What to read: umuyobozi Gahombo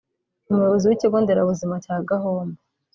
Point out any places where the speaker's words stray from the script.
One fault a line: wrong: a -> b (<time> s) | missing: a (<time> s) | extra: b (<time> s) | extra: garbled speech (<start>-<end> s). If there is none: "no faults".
extra: w'ikigo nderabuzima cya (0.9 s)